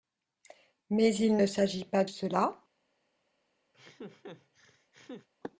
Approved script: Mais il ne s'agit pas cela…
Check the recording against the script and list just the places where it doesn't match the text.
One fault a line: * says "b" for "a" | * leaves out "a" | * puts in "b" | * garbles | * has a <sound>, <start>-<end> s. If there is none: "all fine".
* has a laugh, 3.7-5.3 s